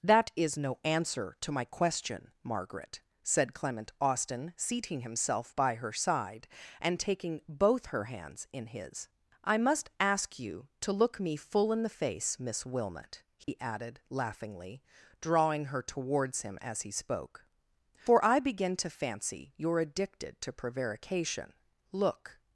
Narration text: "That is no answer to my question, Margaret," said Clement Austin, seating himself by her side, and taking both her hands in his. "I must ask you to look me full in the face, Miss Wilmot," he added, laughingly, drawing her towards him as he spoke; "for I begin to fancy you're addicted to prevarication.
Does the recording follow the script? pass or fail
fail